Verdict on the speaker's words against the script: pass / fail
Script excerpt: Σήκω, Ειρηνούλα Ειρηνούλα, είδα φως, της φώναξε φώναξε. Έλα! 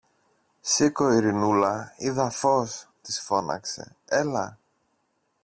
fail